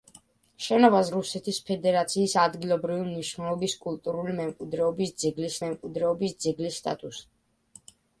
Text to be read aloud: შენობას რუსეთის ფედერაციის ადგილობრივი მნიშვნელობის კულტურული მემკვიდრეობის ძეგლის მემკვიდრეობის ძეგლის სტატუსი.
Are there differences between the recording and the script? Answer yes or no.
no